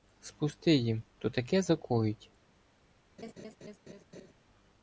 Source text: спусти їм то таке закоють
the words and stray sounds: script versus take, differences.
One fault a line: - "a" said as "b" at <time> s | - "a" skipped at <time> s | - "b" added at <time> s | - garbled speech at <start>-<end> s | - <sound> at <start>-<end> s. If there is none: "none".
- laugh at 3.2-4.3 s